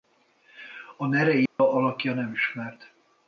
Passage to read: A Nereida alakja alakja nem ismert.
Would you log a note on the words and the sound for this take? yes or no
yes